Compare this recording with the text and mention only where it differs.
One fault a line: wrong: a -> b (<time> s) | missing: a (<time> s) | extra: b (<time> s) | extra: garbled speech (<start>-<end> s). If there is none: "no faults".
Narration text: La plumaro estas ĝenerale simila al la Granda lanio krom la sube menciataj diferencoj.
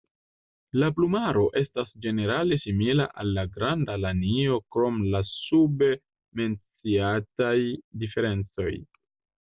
no faults